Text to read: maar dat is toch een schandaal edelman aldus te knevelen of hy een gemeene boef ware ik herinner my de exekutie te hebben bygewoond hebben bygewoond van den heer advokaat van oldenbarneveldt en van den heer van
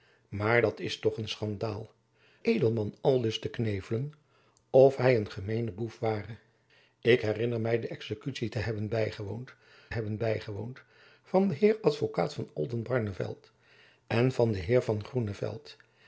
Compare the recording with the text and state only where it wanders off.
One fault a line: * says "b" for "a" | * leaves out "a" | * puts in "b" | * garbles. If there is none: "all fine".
all fine